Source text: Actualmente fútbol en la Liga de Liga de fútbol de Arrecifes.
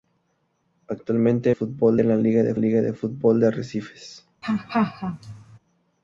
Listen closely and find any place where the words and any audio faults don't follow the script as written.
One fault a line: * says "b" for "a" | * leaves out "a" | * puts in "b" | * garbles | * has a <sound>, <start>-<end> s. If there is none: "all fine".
* has a laugh, 4.4-5.6 s